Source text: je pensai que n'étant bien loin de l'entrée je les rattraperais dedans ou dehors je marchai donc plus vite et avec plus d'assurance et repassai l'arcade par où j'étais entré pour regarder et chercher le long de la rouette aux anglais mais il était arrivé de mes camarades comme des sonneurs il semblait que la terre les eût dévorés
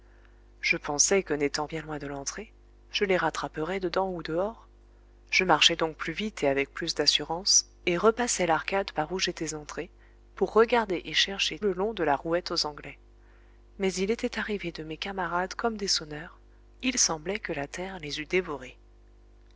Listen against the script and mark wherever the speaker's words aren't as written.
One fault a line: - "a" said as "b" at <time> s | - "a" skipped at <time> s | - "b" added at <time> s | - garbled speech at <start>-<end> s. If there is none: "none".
none